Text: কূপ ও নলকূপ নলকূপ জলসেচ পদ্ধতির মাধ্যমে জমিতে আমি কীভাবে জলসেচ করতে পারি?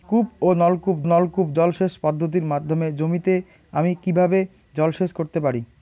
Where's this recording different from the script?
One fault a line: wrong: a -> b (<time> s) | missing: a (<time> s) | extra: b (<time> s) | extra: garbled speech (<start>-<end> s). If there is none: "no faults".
no faults